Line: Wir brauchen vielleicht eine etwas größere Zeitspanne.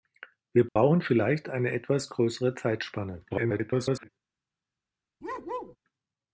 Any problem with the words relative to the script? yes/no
yes